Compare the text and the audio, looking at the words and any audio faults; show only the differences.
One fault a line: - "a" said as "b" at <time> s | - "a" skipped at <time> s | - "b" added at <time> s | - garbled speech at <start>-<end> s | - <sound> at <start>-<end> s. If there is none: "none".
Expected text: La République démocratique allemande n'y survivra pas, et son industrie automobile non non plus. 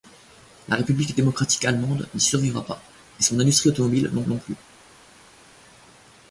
none